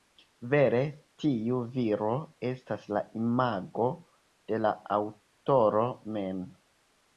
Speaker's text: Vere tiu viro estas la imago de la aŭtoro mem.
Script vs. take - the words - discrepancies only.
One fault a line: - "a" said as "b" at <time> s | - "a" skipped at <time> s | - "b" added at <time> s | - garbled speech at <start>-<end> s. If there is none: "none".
none